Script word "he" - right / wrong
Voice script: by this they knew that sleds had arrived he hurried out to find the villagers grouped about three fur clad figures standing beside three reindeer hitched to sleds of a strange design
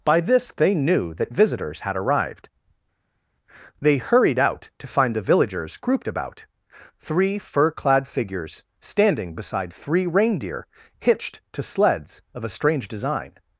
wrong